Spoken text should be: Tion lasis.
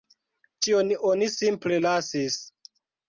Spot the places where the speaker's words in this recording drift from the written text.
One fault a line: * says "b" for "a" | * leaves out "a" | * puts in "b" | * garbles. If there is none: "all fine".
* puts in "oni simple"